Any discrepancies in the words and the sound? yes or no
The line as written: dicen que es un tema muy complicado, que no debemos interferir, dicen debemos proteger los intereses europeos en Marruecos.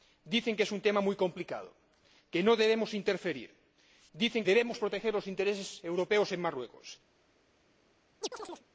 yes